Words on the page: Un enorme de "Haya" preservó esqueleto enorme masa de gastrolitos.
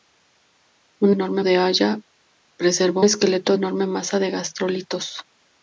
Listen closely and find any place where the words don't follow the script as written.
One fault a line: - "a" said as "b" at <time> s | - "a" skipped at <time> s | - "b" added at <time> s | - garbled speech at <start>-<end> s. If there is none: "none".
none